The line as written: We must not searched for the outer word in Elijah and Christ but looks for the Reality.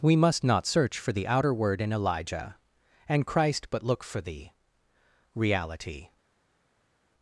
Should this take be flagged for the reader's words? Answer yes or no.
yes